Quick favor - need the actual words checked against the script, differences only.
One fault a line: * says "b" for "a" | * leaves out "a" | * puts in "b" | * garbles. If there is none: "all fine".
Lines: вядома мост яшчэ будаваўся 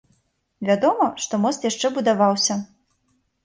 * puts in "што"